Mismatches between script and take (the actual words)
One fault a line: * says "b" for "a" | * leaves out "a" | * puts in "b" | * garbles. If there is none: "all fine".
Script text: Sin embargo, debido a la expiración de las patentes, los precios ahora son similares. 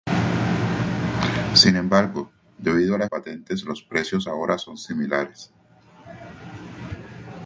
* leaves out "expiración de las"